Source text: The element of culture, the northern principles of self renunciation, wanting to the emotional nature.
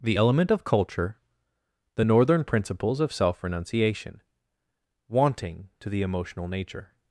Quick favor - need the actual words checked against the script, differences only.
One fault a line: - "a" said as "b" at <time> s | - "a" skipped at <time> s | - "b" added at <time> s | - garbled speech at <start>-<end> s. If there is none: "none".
none